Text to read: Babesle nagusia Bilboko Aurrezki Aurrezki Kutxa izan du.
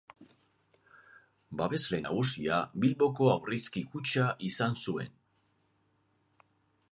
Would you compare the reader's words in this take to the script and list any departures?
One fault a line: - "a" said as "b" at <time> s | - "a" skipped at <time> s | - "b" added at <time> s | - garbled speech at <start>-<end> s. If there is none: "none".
- "Aurrezki" skipped at 3.8 s
- "du" said as "zuen" at 4.9 s